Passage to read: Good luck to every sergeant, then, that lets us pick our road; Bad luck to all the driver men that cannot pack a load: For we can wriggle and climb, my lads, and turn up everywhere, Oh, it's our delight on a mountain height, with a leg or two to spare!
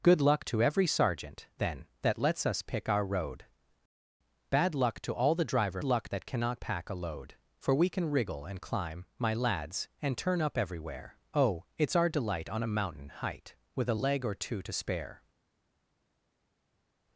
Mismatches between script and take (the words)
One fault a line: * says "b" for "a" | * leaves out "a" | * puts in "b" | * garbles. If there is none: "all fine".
* says "luck" for "men"